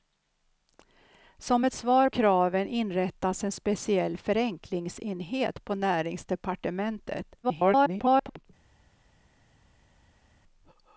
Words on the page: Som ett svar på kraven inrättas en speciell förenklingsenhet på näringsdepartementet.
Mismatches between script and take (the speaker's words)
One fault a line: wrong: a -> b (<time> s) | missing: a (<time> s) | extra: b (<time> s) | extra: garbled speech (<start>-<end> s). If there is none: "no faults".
missing: på (2.1 s)
extra: garbled speech (7.4-8.5 s)